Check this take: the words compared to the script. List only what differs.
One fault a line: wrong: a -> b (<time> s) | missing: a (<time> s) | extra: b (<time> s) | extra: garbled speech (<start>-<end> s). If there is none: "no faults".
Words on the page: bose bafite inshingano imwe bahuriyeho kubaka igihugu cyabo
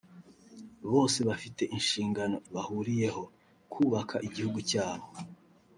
missing: imwe (2.4 s)